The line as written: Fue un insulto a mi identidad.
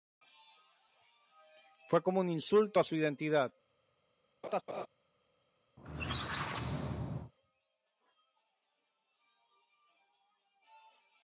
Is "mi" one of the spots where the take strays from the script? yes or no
yes